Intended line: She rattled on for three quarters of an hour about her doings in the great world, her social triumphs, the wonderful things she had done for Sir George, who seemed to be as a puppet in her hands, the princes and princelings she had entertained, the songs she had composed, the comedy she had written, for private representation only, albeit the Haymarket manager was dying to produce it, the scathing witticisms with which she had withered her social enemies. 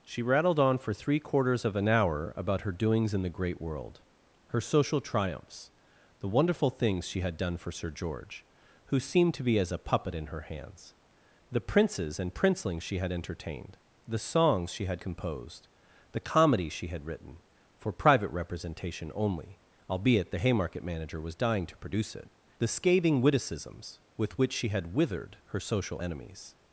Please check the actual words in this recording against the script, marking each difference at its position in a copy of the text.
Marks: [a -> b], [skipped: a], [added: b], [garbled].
She rattled on for three quarters of an hour about her doings in the great world, her social triumphs, the wonderful things she had done for Sir George, who seemed to be as a puppet in her hands, the princes and princelings she had entertained, the songs she had composed, the comedy she had written, for private representation only, albeit the Haymarket manager was dying to produce it, the scathing witticisms with which she had withered her social enemies.